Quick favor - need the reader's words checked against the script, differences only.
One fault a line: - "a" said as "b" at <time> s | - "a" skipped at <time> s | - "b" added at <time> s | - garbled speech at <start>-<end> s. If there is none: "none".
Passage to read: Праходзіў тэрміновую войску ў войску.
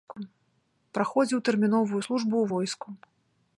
- "войску" said as "службу" at 2.0 s